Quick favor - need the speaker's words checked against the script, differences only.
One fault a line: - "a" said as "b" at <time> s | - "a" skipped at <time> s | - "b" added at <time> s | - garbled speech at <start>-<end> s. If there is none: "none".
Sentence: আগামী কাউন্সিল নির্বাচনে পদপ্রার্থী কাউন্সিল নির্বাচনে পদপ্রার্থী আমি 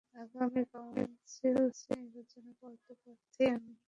- "কাউন্সিল নির্বাচনে পদপ্রার্থী" skipped at 3.4 s